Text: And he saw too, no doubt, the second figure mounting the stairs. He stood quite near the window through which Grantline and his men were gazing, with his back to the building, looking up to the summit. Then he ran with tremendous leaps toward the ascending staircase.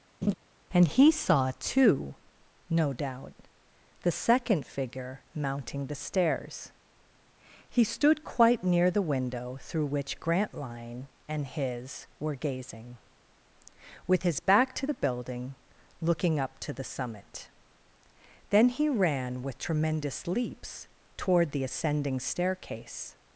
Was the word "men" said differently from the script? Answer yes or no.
yes